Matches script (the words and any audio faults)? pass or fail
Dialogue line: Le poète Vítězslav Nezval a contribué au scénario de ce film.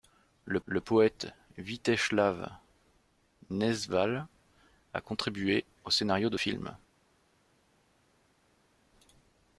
fail